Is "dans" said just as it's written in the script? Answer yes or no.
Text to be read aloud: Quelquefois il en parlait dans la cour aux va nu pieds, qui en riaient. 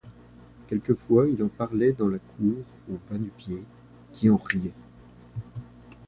yes